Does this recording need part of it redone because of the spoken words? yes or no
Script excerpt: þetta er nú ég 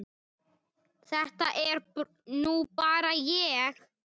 yes